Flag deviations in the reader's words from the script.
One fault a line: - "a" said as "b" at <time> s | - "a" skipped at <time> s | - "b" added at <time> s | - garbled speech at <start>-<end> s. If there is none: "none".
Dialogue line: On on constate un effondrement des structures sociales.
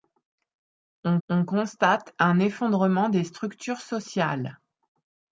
none